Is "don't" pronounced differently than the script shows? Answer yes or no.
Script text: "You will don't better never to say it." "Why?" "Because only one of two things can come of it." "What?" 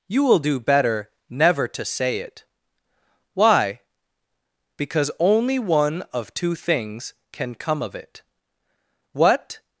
yes